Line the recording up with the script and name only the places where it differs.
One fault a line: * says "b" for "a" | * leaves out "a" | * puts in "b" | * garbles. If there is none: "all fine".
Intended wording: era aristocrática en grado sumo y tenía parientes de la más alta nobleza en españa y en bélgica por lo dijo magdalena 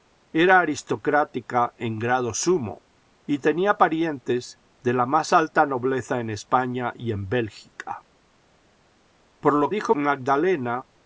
all fine